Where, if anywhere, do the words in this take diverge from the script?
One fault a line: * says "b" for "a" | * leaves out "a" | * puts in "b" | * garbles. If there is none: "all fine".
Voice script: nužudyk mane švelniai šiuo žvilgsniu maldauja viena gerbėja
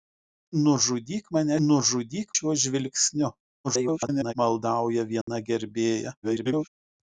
* says "nužudyk" for "švelniai"
* garbles
* garbles